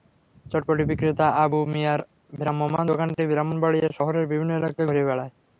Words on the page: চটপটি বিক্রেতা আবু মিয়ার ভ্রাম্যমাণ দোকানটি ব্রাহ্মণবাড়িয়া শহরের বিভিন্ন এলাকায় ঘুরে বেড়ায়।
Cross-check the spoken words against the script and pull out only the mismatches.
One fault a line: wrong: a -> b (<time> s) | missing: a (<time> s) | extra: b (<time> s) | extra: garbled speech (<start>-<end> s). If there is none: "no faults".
no faults